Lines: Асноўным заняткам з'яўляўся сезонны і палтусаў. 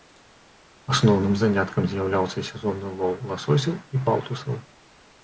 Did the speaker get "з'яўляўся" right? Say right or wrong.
right